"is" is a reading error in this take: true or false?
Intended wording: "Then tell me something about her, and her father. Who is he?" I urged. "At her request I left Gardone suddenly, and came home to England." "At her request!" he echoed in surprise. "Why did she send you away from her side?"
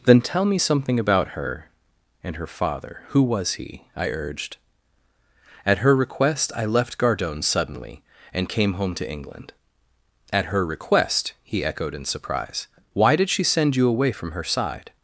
true